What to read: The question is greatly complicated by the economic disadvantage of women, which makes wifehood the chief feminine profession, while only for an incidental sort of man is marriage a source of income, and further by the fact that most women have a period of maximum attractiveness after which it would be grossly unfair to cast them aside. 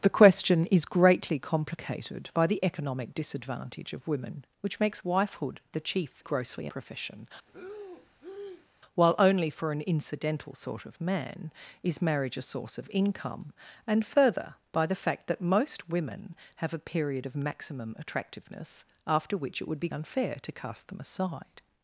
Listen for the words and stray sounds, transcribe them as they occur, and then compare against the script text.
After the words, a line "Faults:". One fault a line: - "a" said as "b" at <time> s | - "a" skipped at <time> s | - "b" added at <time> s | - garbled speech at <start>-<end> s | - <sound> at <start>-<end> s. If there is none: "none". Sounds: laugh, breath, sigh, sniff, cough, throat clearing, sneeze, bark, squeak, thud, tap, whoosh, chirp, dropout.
The question is greatly complicated by the economic disadvantage of women, which makes wifehood the chief grossly profession, while only for an incidental sort of man is marriage a source of income, and further by the fact that most women have a period of maximum attractiveness after which it would be unfair to cast them aside.
Faults:
- "feminine" said as "grossly" at 6.2 s
- breath at 7.5-8.7 s
- "grossly" skipped at 19.9 s